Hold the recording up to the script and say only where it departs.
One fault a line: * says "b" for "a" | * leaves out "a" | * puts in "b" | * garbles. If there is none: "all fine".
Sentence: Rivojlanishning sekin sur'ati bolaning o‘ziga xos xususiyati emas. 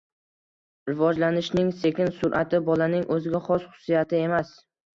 all fine